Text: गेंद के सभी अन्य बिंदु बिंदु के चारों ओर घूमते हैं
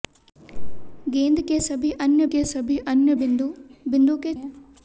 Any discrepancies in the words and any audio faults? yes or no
yes